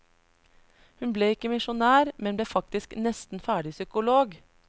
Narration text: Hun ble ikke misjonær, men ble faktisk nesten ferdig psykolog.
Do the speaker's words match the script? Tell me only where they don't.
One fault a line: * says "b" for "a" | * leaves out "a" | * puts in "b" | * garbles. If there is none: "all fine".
all fine